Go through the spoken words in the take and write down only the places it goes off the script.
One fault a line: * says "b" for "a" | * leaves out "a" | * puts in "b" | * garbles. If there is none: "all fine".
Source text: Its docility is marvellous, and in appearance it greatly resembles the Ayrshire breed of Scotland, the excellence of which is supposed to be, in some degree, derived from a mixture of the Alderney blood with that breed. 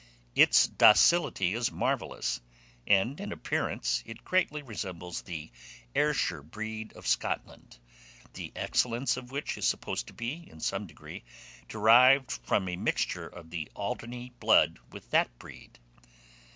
all fine